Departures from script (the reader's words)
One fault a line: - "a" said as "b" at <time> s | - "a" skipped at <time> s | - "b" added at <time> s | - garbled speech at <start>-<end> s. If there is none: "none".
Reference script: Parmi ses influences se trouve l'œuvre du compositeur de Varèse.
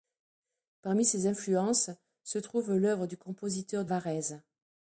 none